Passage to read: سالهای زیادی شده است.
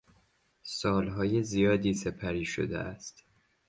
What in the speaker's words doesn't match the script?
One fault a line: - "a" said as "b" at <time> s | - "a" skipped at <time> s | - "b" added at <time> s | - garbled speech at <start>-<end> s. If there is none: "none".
- "سپری" added at 1.9 s